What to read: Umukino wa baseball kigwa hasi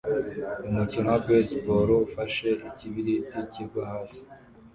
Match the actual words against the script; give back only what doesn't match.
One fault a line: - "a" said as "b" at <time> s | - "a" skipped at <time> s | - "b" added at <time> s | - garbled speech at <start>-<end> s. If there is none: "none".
- "ufashe ikibiriti" added at 2.1 s